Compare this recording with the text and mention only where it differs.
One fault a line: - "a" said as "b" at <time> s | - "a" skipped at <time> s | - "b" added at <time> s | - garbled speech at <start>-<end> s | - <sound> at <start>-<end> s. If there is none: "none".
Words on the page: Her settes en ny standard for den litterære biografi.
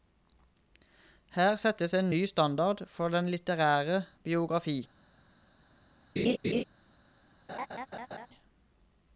- laugh at 6.2-6.6 s
- laugh at 7.5-8.3 s